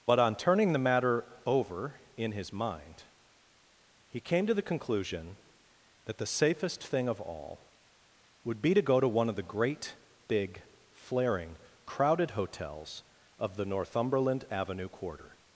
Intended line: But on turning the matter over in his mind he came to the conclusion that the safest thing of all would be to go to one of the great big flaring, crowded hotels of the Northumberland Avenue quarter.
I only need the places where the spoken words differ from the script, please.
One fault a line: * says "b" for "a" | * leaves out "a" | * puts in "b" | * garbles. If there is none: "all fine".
all fine